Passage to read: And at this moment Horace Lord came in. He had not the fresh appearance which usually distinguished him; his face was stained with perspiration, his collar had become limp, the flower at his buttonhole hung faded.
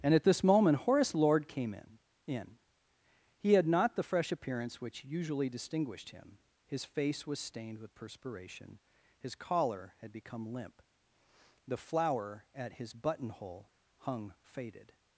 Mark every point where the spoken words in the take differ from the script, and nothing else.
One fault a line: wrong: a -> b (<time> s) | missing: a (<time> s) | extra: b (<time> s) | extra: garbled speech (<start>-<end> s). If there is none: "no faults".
extra: in (2.3 s)